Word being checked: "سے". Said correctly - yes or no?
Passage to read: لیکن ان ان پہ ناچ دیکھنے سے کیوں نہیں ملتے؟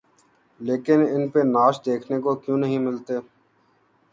no